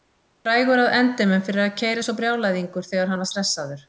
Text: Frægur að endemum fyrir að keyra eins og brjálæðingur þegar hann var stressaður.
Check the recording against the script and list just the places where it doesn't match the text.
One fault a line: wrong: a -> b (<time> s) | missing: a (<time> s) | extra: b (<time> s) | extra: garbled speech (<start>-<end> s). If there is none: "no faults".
no faults